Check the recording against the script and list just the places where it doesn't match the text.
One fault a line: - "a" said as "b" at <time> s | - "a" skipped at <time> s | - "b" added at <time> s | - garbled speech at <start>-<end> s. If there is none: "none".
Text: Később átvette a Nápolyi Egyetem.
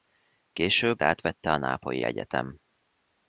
none